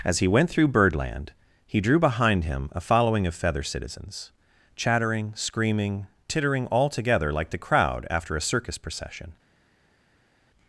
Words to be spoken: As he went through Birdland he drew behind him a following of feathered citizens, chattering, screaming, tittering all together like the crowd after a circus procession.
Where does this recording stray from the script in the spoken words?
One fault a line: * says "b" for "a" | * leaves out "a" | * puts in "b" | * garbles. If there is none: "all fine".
* says "feather" for "feathered"